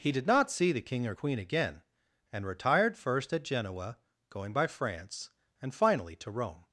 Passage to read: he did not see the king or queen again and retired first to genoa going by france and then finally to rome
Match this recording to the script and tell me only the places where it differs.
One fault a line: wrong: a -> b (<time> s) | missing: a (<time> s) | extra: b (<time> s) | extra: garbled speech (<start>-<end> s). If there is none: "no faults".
wrong: to -> at (3.3 s)
missing: then (5.7 s)